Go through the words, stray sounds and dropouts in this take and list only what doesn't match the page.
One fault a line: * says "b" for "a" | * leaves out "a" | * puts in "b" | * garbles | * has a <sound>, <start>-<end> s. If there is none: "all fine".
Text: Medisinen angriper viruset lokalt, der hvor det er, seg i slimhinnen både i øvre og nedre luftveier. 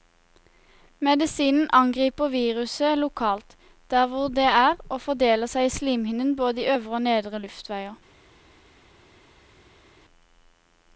* puts in "og fordeler"